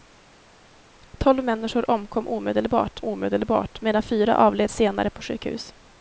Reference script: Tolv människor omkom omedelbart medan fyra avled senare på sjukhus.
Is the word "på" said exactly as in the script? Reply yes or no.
yes